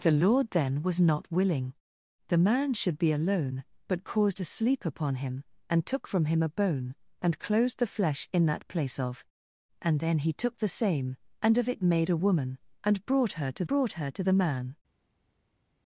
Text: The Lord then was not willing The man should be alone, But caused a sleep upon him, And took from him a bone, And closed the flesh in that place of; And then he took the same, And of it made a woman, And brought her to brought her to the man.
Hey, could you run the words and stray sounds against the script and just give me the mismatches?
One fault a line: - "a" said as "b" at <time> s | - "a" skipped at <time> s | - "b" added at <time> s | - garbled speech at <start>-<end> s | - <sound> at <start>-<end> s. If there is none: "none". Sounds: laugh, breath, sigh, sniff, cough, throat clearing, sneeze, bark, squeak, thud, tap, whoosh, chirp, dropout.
none